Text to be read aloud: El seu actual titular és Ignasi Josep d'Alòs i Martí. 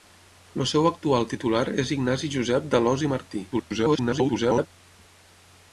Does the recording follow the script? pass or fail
fail